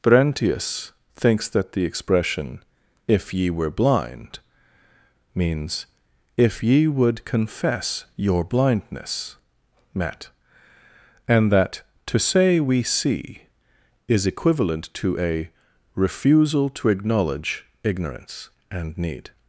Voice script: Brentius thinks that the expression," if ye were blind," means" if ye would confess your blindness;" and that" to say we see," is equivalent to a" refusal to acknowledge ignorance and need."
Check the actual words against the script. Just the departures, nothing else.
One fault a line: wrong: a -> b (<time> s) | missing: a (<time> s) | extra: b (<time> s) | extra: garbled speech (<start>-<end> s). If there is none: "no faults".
extra: met (9.9 s)